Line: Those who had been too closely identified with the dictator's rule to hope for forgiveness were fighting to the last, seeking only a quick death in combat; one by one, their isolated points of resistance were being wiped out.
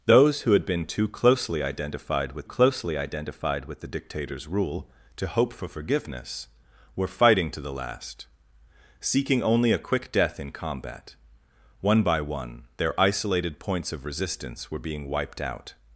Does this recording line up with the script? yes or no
no